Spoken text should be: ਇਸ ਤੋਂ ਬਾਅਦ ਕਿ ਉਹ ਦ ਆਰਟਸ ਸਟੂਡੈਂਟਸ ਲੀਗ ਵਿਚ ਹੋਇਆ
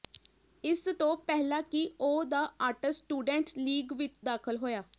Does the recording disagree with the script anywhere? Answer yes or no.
yes